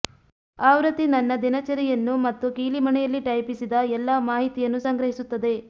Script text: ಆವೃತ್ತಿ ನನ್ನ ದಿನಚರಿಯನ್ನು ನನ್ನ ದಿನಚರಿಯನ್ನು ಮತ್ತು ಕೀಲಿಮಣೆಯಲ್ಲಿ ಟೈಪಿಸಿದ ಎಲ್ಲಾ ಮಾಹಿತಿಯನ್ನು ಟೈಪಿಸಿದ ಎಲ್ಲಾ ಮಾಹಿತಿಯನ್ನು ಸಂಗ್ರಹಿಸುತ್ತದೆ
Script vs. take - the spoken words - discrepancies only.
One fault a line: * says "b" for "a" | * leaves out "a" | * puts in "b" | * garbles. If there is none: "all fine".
* leaves out "ನನ್ನ ದಿನಚರಿಯನ್ನು"
* leaves out "ಟೈಪಿಸಿದ ಎಲ್ಲಾ ಮಾಹಿತಿಯನ್ನು"